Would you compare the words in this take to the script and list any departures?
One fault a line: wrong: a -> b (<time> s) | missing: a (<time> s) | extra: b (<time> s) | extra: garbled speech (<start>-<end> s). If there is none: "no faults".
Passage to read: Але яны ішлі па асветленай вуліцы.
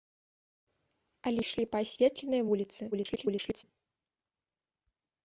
missing: яны (1.4 s)
extra: garbled speech (2.9-3.6 s)